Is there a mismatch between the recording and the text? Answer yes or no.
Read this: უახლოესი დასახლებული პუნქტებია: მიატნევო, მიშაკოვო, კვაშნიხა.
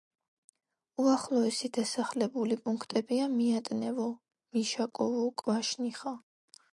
no